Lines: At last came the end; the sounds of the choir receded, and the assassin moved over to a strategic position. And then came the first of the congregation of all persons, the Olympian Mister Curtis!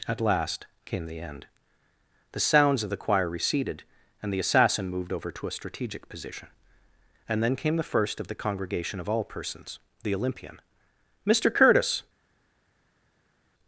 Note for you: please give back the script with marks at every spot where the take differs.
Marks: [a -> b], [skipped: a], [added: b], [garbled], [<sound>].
At last came the end; the sounds of the choir receded, and the assassin moved over to a strategic position. And then came the first of the congregation of all persons, the Olympian Mister Curtis!